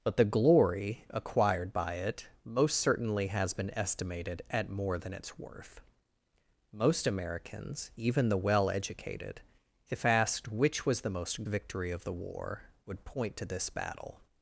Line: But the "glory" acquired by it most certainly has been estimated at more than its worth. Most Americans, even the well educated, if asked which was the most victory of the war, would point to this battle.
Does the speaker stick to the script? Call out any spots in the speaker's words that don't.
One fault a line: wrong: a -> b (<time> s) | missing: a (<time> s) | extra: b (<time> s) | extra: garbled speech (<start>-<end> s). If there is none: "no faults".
no faults